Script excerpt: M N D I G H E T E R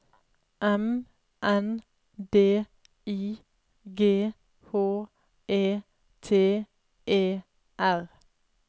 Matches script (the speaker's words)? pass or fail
pass